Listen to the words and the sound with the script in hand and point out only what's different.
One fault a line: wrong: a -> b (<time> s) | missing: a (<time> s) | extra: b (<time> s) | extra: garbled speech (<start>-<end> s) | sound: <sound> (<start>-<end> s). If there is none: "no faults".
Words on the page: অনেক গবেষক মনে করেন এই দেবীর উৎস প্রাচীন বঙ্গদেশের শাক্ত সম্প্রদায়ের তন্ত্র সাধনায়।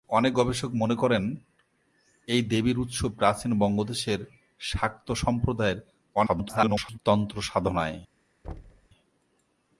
extra: garbled speech (6.1-7.0 s)
sound: thud (8.4-8.9 s)